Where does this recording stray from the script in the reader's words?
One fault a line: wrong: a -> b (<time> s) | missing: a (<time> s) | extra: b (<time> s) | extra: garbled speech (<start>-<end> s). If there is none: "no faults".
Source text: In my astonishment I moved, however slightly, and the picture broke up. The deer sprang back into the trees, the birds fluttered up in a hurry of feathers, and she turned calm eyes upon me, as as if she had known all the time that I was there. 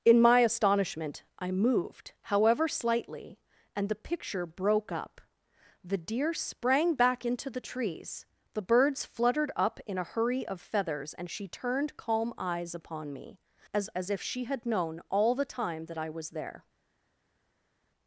no faults